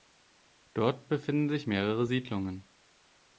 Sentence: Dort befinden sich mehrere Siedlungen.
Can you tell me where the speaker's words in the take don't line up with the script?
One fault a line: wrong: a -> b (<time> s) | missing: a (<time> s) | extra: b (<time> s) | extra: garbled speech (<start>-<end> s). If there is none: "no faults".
no faults